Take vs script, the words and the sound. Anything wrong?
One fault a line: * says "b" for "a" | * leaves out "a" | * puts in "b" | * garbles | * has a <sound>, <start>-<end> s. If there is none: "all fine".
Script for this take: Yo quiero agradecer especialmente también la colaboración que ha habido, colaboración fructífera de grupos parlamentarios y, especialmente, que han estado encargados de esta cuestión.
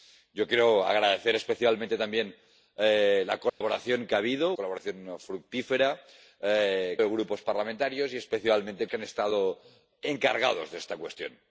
* has a dropout, 3.5-3.6 s